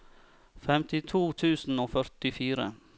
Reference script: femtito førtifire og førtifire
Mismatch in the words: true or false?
true